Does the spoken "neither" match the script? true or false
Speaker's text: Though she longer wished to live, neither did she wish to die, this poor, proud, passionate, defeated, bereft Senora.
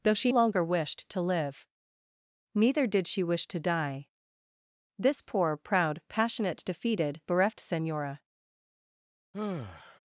true